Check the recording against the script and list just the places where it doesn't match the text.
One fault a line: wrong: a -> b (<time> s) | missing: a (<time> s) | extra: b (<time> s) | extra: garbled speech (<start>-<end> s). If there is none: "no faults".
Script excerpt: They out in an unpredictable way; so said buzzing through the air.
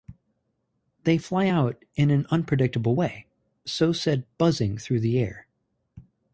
extra: fly (1.2 s)